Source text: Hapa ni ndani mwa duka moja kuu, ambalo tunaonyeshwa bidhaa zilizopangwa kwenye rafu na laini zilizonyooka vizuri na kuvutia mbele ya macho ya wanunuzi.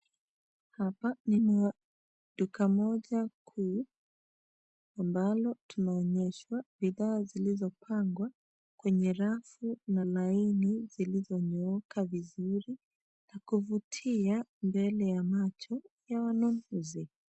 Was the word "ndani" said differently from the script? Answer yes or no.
yes